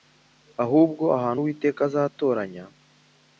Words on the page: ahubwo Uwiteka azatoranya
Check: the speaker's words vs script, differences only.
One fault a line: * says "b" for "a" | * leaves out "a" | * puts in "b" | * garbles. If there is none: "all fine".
* puts in "ahantu"